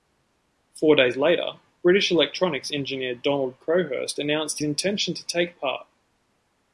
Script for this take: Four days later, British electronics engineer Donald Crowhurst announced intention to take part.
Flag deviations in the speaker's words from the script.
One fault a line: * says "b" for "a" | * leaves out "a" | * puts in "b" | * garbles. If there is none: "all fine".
all fine